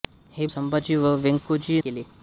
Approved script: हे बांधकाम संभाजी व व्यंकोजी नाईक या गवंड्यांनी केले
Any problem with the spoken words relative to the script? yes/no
yes